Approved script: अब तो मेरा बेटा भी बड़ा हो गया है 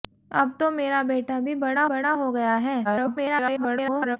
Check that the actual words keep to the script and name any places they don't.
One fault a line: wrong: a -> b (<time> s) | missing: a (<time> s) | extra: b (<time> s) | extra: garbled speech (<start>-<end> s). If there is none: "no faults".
extra: बड़ा (1.8 s)
extra: garbled speech (2.8-4.2 s)